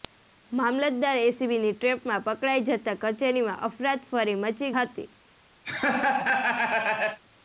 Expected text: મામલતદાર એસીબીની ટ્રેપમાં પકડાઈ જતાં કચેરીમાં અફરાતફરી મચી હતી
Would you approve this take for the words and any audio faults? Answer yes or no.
no